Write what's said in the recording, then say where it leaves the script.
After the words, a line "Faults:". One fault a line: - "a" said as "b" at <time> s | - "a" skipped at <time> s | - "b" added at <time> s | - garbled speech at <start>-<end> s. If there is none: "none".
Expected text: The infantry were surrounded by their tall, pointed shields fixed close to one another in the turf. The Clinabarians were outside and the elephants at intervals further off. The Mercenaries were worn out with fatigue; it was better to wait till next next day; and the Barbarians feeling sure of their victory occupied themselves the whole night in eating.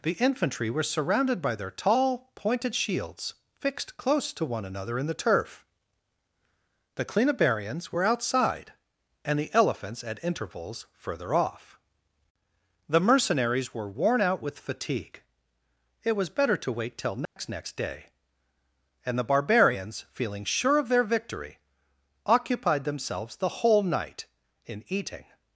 The infantry were surrounded by their tall, pointed shields fixed close to one another in the turf. The Clinabarians were outside and the elephants at intervals further off. The Mercenaries were worn out with fatigue; it was better to wait till next next day; and the Barbarians feeling sure of their victory occupied themselves the whole night in eating.
Faults:
none